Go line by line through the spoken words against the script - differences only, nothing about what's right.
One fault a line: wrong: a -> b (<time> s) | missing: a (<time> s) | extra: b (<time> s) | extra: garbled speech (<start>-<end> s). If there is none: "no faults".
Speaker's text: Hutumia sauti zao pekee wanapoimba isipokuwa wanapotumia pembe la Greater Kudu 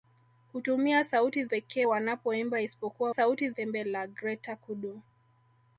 missing: zao (1.4 s)
wrong: wanapotumia -> sauti (3.1 s)